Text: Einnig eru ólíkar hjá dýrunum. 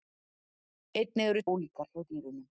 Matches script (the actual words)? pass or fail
pass